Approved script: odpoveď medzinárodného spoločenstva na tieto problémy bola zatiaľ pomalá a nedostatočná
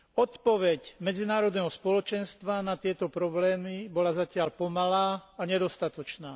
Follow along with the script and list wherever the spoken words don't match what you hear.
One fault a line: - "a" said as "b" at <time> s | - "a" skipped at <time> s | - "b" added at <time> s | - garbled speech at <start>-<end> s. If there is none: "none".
none